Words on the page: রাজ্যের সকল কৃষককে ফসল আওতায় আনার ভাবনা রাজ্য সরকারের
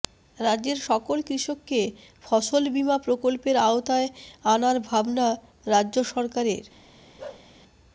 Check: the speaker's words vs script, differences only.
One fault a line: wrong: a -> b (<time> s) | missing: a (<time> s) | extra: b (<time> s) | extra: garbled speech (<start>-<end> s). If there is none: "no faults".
extra: বীমা প্রকল্পের (2.7 s)